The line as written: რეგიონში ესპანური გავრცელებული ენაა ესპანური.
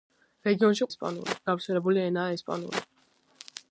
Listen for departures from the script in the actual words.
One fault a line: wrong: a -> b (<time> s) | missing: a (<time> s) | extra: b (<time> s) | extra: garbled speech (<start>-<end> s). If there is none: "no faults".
no faults